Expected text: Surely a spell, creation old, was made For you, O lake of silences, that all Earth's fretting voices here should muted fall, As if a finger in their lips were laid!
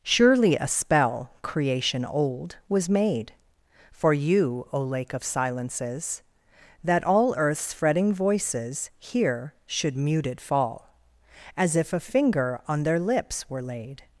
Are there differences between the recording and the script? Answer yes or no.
yes